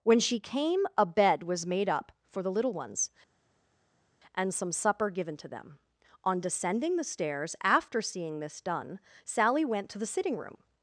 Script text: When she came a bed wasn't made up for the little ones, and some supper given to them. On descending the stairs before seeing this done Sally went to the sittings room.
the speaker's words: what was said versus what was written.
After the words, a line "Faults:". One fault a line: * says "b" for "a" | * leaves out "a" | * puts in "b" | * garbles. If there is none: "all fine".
When she came a bed was made up for the little ones, and some supper given to them. On descending the stairs after seeing this done Sally went to the sitting room.
Faults:
* says "was" for "wasn't"
* says "after" for "before"
* says "sitting" for "sittings"